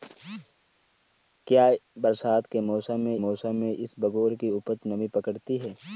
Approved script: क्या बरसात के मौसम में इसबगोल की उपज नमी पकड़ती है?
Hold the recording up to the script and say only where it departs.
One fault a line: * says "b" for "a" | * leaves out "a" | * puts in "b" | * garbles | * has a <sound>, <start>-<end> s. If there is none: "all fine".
* puts in "मौसम में"